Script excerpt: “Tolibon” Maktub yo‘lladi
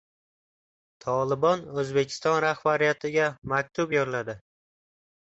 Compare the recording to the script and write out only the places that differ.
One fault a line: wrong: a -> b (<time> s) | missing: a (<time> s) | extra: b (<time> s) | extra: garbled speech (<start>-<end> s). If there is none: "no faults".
extra: O‘zbekiston rahbariyatiga (1.8 s)